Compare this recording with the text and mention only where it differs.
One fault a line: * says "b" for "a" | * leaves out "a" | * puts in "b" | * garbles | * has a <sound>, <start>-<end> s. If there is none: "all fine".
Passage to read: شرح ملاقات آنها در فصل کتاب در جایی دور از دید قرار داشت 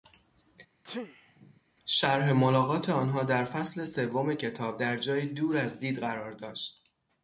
* has a sneeze, 0.8-1.6 s
* puts in "سوم"